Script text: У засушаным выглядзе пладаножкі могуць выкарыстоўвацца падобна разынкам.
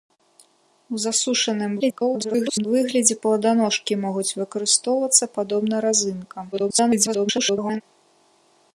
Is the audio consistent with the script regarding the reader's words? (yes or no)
no